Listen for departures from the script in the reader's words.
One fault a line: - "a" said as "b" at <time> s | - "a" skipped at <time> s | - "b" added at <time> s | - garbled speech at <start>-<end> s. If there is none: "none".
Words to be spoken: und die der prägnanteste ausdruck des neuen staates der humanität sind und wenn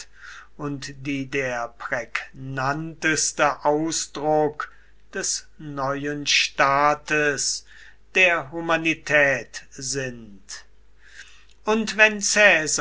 none